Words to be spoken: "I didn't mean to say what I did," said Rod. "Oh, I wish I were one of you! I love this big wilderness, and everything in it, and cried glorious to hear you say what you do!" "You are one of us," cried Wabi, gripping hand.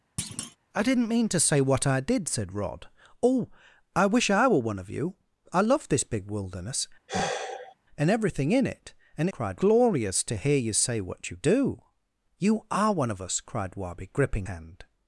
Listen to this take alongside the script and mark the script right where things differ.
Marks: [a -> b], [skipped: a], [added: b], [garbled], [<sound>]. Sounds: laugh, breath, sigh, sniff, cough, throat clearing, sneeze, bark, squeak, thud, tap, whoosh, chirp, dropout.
[thud] "I didn't mean to say what I did," said Rod. "Oh, I wish I were one of you! I love this big wilderness, [sigh] and everything in it, and cried glorious to hear you say what you do!" "You are one of us," cried Wabi, gripping hand.